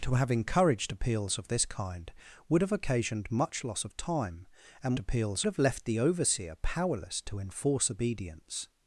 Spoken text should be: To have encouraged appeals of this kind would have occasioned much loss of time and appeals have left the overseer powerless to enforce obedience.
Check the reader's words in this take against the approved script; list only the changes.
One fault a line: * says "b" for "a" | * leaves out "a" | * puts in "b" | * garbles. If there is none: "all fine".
all fine